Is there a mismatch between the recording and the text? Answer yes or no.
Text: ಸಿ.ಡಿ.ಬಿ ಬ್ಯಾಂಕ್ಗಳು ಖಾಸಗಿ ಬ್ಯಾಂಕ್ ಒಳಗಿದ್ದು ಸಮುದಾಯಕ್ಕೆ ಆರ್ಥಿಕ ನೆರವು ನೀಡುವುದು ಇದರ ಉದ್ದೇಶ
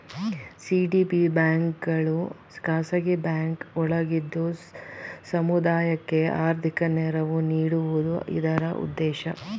no